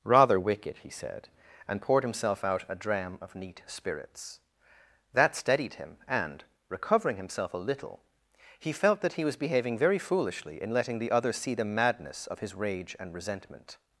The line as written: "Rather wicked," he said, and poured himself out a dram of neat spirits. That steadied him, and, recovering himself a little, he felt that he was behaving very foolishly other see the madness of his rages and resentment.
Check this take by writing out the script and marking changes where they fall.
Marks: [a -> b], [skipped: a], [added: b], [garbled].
"Rather wicked," he said, and poured himself out a dram of neat spirits. That steadied him, and, recovering himself a little, he felt that he was behaving very foolishly [added: in letting the] other see the madness of his [rages -> rage] and resentment.